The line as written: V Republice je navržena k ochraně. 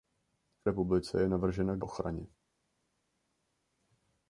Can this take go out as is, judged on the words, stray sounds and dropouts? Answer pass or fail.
pass